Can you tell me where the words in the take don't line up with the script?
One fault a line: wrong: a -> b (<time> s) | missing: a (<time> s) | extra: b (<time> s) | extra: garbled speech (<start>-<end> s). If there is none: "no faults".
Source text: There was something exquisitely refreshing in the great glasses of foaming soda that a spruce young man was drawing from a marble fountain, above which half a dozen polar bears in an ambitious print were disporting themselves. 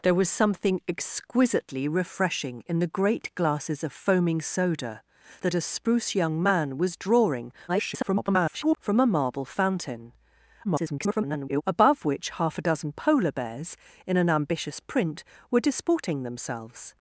extra: garbled speech (7.7-8.8 s)
extra: garbled speech (10.6-11.6 s)